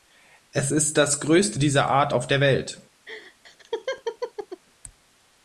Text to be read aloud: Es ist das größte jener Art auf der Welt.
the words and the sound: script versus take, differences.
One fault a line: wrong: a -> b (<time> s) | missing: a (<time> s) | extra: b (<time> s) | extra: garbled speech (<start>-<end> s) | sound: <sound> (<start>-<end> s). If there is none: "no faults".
wrong: jener -> dieser (1.6 s)
sound: laugh (3.1-4.6 s)